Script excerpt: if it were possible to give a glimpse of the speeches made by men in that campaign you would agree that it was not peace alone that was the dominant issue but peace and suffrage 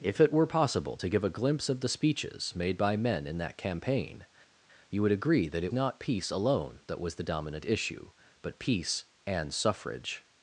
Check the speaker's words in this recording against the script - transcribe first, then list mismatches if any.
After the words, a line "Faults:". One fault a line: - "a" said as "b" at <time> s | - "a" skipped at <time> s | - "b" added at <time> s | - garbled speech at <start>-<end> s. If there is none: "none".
if it were possible to give a glimpse of the speeches made by men in that campaign you would agree that it not peace alone that was the dominant issue but peace and suffrage
Faults:
- "was" skipped at 5.7 s